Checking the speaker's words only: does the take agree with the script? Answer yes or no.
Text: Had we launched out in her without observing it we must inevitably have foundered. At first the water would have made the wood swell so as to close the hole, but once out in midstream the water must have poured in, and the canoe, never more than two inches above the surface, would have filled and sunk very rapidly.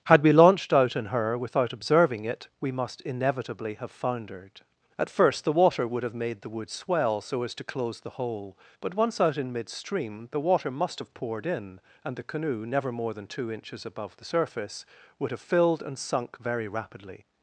yes